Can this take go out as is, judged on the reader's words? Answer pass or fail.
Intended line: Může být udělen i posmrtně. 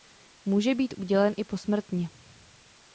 pass